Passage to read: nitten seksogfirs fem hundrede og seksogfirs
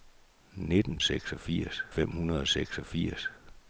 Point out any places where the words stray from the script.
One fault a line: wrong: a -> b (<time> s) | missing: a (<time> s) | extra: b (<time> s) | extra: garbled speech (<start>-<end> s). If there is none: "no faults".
no faults